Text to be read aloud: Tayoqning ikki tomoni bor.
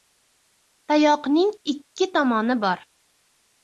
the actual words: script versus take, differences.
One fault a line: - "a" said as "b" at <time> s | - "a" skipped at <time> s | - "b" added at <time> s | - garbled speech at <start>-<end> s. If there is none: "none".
none